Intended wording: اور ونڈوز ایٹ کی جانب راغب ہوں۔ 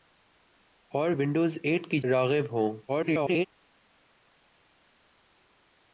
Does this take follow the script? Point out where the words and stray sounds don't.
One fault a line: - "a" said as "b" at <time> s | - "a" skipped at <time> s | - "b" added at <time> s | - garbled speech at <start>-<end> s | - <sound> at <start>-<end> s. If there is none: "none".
- "جانب" skipped at 2.0 s
- garbled speech at 2.9-3.5 s